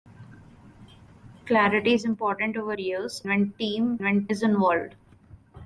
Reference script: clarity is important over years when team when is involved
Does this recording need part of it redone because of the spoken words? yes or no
no